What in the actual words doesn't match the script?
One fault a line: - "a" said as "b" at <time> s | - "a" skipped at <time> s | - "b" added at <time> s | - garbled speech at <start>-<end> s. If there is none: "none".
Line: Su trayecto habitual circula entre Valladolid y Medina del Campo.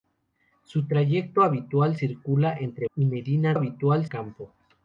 - "Valladolid" skipped at 2.9 s
- "del" said as "habitual" at 3.5 s